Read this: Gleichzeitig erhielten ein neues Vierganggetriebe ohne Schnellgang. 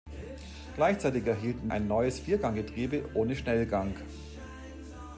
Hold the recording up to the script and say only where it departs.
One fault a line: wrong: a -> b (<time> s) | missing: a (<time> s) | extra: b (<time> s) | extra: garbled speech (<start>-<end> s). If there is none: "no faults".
no faults